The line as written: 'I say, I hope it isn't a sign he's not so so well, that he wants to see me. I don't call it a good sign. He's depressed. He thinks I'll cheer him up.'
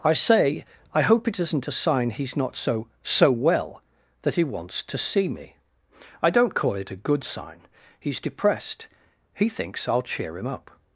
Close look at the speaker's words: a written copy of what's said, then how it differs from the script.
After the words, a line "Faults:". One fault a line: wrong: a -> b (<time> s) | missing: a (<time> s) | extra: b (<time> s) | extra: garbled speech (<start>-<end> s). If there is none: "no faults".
'I say, I hope it isn't a sign he's not so so well, that he wants to see me. I don't call it a good sign. He's depressed. He thinks I'll cheer him up.'
Faults:
no faults